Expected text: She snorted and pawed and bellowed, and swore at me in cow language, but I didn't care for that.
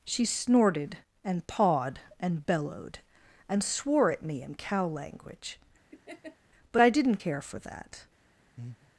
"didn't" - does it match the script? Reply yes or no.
yes